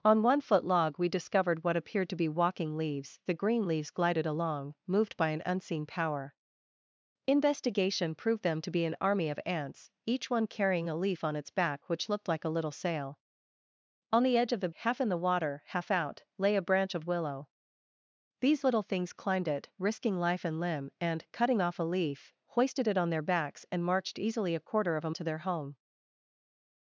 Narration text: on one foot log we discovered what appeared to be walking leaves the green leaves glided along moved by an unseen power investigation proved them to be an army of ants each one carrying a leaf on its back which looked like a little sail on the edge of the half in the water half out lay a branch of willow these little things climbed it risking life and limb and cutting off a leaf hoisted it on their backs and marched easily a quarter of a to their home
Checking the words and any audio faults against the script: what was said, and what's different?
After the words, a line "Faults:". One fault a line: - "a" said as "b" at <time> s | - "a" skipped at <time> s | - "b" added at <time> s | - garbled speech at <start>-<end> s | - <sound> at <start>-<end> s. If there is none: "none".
on one foot log we discovered what appeared to be walking leaves the green leaves glided along moved by an unseen power investigation proved them to be an army of ants each one carrying a leaf on its back which looked like a little sail on the edge of the half in the water half out lay a branch of willow these little things climbed it risking life and limb and cutting off a leaf hoisted it on their backs and marched easily a quarter of a to their home
Faults:
none